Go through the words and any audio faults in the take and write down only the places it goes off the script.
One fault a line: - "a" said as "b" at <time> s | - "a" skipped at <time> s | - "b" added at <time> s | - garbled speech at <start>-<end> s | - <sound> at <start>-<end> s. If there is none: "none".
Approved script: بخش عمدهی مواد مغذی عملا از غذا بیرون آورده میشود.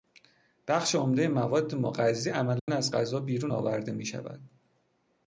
- dropout at 2.6-2.7 s